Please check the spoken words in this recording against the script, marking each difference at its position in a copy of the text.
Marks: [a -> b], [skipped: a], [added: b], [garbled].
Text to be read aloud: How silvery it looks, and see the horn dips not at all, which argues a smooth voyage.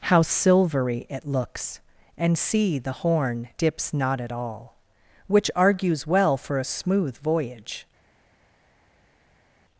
How silvery it looks, and see the horn dips not at all, which argues [added: well for] a smooth voyage.